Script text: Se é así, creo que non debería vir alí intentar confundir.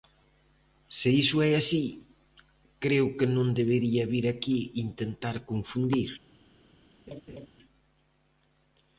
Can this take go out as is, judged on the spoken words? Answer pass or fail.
fail